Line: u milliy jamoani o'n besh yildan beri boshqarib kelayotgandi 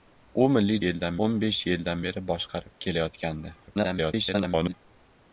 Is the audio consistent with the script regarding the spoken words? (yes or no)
no